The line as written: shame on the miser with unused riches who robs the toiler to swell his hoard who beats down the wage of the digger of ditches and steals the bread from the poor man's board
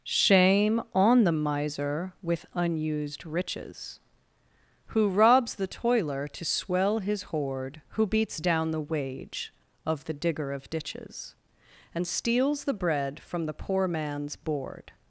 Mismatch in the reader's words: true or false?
false